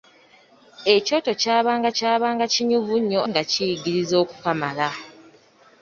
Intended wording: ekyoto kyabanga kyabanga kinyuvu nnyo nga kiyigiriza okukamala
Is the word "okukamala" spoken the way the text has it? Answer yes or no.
yes